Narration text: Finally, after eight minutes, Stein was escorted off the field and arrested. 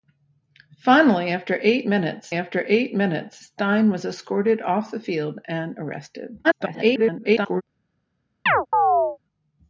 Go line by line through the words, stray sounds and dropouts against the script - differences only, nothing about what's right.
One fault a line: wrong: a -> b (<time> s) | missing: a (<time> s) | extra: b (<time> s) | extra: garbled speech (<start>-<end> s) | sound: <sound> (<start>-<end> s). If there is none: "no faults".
extra: after eight minutes (2.3 s)
extra: garbled speech (6.4-7.6 s)
sound: chirp (8.5-9.2 s)